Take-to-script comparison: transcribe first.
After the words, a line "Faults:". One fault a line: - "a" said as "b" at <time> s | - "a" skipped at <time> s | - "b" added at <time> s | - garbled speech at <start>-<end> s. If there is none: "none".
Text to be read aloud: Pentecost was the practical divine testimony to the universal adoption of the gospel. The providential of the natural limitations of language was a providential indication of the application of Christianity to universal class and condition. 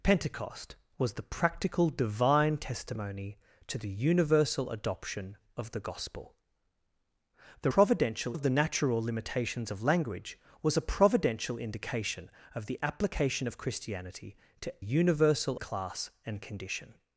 Pentecost was the practical divine testimony to the universal adoption of the gospel. The providential of the natural limitations of language was a providential indication of the application of Christianity to universal class and condition.
Faults:
none